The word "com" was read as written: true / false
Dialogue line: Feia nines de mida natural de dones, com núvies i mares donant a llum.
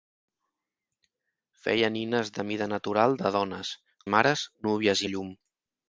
false